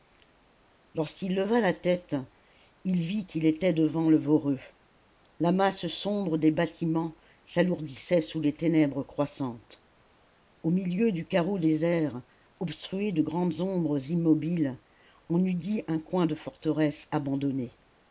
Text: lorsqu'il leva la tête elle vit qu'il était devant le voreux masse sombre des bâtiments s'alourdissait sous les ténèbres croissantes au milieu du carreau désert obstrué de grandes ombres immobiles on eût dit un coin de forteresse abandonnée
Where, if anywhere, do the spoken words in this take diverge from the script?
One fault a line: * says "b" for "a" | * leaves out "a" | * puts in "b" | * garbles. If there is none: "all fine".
* says "il" for "elle"
* puts in "la"